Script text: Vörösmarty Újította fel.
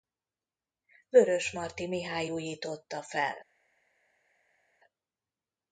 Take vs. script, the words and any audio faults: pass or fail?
fail